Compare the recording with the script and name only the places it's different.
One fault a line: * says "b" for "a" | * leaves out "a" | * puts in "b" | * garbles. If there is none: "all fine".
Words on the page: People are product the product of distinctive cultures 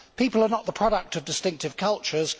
* says "not" for "product"